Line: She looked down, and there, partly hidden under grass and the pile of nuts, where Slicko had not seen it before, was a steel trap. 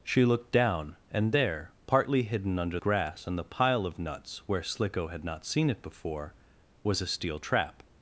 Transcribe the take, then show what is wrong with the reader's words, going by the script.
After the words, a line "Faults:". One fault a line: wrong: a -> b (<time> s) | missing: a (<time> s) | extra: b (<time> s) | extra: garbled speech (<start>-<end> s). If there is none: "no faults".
She looked down, and there, partly hidden under grass and the pile of nuts, where Slicko had not seen it before, was a steel trap.
Faults:
no faults